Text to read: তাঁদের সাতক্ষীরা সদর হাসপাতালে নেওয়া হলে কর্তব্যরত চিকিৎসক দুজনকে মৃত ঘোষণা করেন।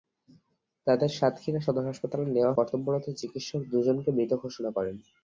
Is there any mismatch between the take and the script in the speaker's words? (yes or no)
yes